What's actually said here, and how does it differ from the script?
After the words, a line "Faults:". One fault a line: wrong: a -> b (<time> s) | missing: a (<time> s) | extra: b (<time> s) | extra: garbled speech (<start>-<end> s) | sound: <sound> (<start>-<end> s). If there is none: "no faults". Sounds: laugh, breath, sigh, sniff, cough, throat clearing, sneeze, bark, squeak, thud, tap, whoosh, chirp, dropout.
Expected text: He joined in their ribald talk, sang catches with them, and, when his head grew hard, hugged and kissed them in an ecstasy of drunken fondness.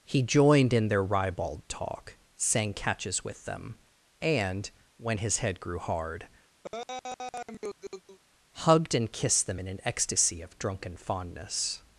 He joined in their ribald talk, sang catches with them, and, when his head grew hard, hugged and kissed them in an ecstasy of drunken fondness.
Faults:
sound: laugh (6.6-8.2 s)